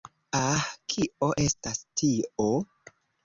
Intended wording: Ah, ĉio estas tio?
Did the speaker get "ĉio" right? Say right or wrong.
wrong